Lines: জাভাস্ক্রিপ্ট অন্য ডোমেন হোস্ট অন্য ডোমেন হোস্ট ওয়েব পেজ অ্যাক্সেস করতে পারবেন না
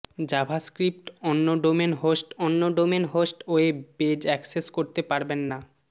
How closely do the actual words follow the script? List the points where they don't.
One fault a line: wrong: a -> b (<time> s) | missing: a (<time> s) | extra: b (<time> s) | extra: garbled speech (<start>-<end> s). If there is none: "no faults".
no faults